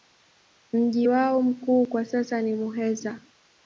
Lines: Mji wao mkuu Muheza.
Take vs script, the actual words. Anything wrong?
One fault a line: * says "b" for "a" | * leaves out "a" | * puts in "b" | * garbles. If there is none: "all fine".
* puts in "kwa sasa ni"